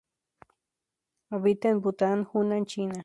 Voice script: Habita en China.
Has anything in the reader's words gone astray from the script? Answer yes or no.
yes